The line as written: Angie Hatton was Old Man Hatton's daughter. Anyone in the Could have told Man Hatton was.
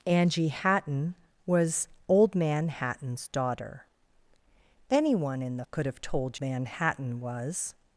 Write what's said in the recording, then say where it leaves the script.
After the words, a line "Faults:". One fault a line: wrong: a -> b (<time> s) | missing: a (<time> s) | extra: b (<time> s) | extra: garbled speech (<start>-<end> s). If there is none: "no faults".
Angie Hatton was Old Man Hatton's daughter. Anyone in the Could have told Man Hatton was.
Faults:
no faults